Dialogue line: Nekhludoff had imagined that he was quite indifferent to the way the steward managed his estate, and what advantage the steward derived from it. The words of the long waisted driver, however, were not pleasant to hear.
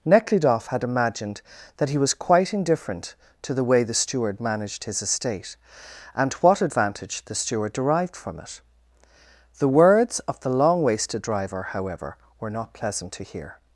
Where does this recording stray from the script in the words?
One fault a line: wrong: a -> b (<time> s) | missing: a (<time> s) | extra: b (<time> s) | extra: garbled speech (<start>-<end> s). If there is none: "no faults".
no faults